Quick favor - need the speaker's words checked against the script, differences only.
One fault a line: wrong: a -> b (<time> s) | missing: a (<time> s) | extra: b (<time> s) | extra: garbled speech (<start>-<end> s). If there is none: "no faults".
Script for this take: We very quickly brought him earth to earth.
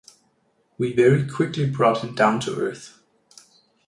wrong: earth -> down (2.1 s)